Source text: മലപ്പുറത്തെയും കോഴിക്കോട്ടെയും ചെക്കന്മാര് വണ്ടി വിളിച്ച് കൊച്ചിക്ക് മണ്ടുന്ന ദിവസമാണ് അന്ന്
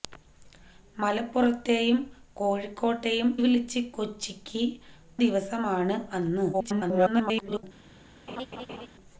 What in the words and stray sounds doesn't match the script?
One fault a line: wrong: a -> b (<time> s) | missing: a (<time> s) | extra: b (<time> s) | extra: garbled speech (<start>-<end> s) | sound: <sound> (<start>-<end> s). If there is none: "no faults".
missing: ചെക്കന്മാര് വണ്ടി (3.3 s)
missing: മണ്ടുന്ന (4.6 s)
extra: garbled speech (6.5-7.6 s)
sound: laugh (8.3-8.9 s)